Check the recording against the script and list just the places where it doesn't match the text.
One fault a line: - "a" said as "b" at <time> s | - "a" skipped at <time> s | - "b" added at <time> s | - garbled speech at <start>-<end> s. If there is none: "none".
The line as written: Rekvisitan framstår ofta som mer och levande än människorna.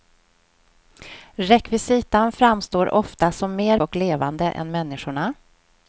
none